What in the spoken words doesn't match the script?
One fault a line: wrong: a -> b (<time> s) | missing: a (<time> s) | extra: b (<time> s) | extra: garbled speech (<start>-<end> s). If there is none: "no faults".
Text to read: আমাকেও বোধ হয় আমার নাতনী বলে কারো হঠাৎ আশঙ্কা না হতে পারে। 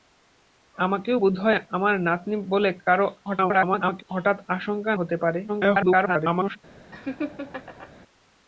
extra: garbled speech (3.2-4.0 s)
missing: না (4.9 s)
extra: garbled speech (5.5-6.6 s)